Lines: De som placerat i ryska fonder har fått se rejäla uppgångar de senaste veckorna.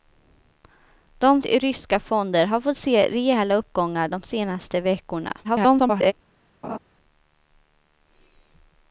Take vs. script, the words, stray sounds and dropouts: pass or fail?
fail